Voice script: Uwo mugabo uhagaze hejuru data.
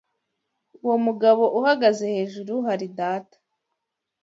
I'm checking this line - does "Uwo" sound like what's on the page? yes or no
yes